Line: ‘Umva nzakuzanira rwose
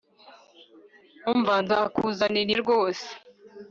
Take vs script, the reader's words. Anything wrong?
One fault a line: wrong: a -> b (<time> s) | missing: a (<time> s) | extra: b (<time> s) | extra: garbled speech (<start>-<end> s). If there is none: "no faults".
no faults